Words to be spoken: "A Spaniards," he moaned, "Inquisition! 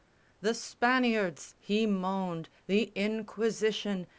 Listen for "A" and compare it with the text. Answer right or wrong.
wrong